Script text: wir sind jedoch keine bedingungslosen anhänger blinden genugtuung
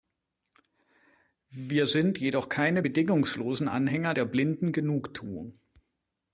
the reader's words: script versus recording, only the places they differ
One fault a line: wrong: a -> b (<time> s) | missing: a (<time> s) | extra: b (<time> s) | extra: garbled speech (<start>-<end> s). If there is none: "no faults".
extra: der (4.1 s)